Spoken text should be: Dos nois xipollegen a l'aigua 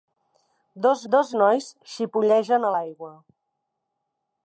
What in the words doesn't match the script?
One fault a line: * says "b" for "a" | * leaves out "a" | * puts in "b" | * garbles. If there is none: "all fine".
* puts in "dos"